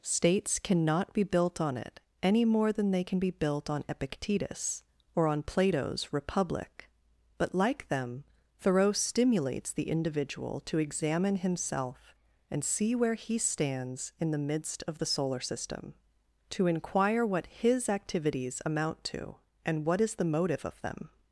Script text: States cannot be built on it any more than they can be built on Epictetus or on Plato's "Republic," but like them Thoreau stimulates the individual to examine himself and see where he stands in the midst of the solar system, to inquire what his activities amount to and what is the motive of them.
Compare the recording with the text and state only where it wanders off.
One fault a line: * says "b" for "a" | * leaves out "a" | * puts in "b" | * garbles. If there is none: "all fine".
all fine